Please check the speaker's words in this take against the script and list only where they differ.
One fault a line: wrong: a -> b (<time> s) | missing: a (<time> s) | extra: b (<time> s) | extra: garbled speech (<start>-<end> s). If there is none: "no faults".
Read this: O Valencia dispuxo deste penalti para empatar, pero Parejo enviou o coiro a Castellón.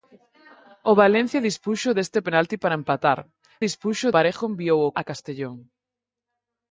wrong: pero -> dispuxo (3.6 s)
missing: coiro (5.0 s)